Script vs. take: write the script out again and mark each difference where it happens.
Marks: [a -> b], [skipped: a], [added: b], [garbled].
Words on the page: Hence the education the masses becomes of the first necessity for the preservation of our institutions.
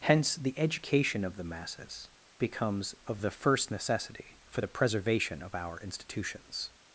Hence the education [added: of] the masses becomes of the first necessity for the preservation of our institutions.